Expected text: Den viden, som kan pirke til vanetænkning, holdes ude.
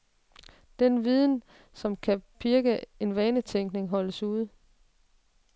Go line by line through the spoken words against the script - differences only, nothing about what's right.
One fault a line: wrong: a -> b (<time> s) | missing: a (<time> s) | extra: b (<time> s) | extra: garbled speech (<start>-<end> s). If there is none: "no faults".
no faults